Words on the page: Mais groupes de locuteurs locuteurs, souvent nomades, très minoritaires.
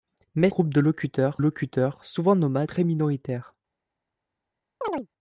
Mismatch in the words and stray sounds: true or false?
true